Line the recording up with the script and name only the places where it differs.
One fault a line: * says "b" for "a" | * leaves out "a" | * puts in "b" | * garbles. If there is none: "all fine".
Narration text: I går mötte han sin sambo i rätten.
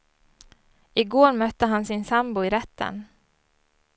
all fine